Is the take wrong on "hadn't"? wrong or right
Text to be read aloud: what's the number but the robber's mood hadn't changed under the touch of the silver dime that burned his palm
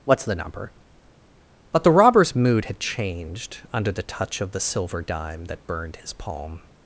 wrong